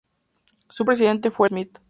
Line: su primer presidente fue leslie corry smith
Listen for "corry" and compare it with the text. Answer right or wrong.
wrong